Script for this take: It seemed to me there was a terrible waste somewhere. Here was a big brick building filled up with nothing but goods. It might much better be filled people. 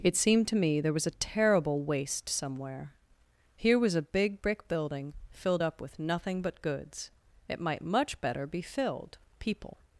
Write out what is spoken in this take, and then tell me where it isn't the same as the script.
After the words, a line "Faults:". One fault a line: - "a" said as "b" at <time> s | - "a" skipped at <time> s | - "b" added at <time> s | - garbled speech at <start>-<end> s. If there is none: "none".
It seemed to me there was a terrible waste somewhere. Here was a big brick building filled up with nothing but goods. It might much better be filled people.
Faults:
none